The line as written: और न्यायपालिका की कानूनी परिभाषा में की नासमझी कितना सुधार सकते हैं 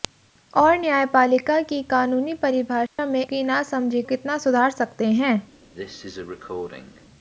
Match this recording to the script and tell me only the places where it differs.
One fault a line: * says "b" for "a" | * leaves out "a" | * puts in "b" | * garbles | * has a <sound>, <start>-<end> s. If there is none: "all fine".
* has a dropout, 2.9-3.0 s
* has a cough, 5.7-7.1 s